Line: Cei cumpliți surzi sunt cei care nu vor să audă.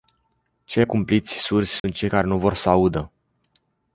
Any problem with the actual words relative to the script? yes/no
no